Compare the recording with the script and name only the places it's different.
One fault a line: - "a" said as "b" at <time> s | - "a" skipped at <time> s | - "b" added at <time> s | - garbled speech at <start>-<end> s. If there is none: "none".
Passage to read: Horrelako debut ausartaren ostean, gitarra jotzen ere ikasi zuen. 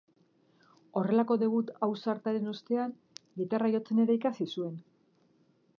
none